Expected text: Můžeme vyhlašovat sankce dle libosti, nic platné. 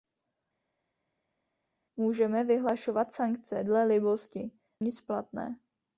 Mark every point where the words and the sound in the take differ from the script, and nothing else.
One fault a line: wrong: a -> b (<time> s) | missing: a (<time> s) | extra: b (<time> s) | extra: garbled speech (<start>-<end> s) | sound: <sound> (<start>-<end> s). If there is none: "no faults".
no faults